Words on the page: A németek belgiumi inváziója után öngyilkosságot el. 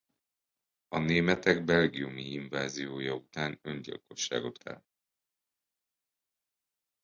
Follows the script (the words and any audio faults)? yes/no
yes